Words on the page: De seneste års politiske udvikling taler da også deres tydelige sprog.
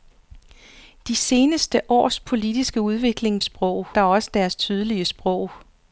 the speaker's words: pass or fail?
fail